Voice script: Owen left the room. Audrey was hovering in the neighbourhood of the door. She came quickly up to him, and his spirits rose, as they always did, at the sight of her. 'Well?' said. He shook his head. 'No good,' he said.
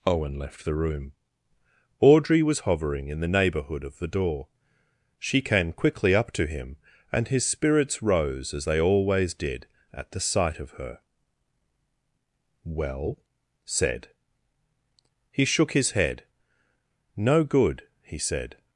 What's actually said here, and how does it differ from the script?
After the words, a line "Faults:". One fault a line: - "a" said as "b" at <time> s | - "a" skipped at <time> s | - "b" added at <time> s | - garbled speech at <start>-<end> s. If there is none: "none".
Owen left the room. Audrey was hovering in the neighbourhood of the door. She came quickly up to him, and his spirits rose, as they always did, at the sight of her. 'Well?' said. He shook his head. 'No good,' he said.
Faults:
none